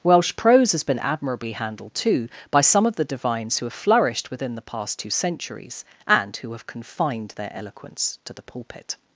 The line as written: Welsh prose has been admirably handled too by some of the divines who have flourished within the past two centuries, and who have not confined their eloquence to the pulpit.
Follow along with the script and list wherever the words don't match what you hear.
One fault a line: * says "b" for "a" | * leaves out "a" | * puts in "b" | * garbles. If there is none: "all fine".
* leaves out "not"